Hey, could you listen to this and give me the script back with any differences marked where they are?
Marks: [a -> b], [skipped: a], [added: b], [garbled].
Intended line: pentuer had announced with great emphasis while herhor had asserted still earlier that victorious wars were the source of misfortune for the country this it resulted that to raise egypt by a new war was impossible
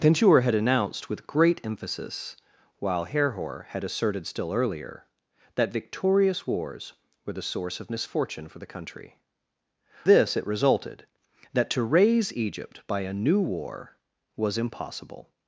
pentuer had announced with great emphasis while herhor had asserted still earlier that victorious wars were the source of misfortune for the country this it resulted that to raise egypt by a new war was impossible